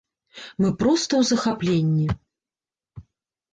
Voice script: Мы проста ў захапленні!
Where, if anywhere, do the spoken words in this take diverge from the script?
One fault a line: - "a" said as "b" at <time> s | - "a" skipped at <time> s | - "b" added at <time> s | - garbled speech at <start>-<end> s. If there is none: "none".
none